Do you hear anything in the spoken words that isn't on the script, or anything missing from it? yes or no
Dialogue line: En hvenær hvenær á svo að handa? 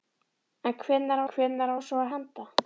no